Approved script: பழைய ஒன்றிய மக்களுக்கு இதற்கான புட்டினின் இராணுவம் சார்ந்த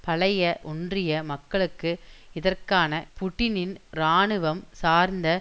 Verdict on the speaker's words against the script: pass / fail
pass